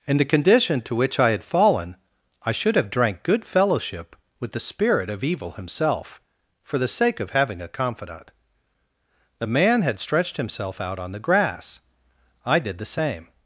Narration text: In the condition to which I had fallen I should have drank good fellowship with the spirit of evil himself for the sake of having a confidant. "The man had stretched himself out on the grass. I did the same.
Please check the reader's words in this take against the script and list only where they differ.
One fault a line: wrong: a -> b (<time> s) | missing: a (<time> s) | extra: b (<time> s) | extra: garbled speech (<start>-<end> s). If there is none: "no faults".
no faults